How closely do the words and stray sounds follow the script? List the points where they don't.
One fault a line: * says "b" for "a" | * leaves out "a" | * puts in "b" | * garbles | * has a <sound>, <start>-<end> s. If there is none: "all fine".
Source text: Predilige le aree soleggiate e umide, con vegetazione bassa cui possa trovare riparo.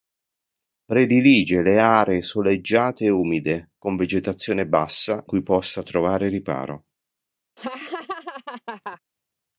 * has a laugh, 7.6-9.0 s